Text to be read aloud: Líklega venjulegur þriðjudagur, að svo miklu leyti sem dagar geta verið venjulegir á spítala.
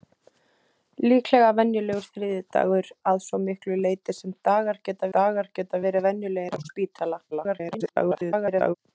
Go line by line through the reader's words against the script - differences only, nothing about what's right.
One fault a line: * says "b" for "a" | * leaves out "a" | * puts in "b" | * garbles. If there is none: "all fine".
* puts in "dagar geta"
* garbles